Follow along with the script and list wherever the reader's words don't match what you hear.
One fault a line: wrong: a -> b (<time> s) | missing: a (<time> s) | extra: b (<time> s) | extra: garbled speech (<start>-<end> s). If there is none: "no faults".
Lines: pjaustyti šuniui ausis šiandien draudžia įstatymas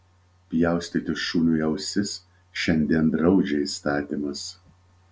no faults